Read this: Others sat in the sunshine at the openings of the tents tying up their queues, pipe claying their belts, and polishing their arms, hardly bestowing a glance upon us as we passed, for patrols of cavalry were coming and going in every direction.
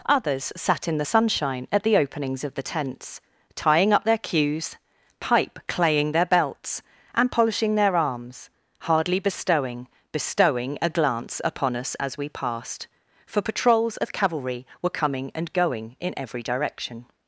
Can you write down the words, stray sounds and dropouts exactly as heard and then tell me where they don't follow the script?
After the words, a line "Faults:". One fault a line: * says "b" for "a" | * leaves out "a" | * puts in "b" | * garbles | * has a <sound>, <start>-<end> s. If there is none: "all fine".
Others sat in the sunshine at the openings of the tents tying up their queues, pipe claying their belts, and polishing their arms, hardly bestowing bestowing a glance upon us as we passed, for patrols of cavalry were coming and going in every direction.
Faults:
* puts in "bestowing"